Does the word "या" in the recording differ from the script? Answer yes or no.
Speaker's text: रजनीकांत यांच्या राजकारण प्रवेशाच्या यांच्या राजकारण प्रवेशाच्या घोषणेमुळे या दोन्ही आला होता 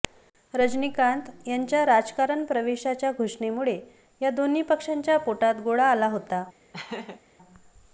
yes